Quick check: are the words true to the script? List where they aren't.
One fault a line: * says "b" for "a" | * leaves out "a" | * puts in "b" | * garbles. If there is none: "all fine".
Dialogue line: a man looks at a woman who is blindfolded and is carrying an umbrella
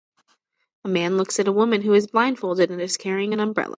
all fine